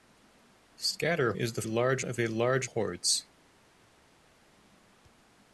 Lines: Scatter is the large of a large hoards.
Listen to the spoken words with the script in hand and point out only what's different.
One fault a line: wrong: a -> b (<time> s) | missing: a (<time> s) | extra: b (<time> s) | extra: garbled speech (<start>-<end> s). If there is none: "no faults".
no faults